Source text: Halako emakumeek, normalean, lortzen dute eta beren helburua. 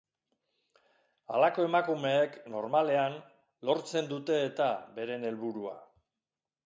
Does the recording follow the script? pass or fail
pass